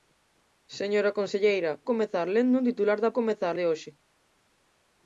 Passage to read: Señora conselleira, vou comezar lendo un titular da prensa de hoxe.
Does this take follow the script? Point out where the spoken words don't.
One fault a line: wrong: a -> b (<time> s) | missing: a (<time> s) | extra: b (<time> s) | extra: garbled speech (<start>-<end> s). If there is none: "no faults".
missing: vou (1.7 s)
wrong: prensa -> comezar (3.2 s)